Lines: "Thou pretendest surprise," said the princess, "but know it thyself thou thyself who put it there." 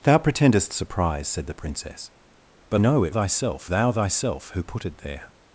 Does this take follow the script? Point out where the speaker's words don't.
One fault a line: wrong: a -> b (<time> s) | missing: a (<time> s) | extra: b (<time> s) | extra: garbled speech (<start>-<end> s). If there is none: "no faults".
no faults